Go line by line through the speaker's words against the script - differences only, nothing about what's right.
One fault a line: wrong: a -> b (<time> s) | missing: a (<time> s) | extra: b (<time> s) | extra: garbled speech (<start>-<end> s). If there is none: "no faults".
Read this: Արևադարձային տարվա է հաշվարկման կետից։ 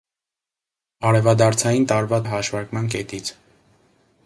no faults